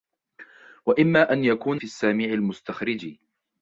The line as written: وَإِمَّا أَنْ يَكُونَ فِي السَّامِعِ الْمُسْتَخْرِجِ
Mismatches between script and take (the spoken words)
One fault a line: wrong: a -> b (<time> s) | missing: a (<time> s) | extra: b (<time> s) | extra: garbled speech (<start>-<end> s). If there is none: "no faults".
no faults